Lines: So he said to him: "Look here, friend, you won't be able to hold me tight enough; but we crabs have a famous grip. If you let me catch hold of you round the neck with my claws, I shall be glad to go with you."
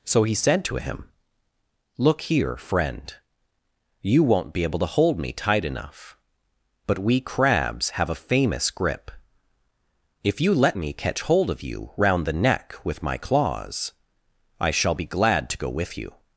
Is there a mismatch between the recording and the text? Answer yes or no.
no